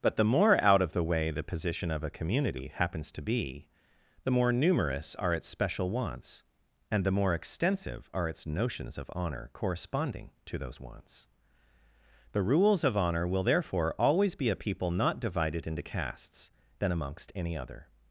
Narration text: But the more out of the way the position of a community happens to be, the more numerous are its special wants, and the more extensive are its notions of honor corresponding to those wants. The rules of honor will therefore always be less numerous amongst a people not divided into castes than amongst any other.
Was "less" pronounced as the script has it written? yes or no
no